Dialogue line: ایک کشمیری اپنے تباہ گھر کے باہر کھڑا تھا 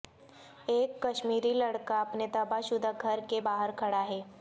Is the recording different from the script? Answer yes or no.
yes